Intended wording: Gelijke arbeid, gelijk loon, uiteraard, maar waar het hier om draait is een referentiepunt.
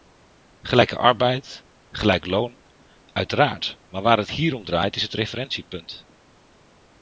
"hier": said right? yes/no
yes